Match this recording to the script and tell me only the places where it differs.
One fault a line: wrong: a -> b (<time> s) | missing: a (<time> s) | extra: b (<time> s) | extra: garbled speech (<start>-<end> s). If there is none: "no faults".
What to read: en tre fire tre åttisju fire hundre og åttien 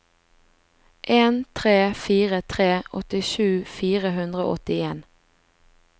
no faults